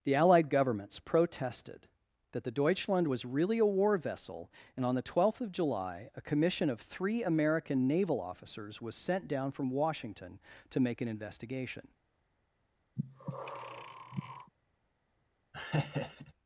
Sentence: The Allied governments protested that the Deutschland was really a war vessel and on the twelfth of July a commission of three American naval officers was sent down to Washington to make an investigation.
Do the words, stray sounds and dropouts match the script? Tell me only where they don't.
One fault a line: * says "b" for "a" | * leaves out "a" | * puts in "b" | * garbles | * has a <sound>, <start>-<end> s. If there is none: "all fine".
* says "from" for "to"
* has a breath, 13.0-14.5 s
* has a laugh, 15.5-16.3 s